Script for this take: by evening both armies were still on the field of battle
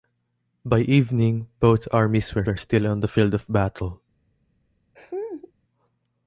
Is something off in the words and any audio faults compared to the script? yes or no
yes